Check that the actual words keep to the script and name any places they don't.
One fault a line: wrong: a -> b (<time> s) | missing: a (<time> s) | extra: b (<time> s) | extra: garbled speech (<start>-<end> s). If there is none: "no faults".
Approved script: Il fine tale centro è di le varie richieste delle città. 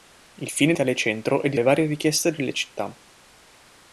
no faults